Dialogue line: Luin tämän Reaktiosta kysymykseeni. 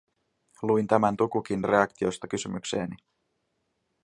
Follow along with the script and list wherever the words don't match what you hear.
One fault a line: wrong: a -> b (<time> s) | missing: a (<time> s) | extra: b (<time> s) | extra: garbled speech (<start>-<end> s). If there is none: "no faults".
extra: Tukukin (1.2 s)